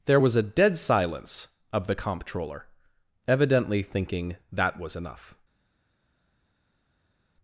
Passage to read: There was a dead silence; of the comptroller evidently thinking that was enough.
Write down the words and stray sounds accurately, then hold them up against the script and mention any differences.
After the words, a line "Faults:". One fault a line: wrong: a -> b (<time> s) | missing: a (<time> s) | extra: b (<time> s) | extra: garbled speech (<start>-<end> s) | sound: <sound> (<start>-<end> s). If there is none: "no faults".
There was a dead silence; of the comptroller evidently thinking that was enough.
Faults:
no faults